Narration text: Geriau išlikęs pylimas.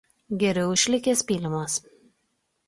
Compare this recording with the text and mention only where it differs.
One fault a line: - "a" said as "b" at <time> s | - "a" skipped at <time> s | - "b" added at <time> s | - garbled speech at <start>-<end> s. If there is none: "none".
none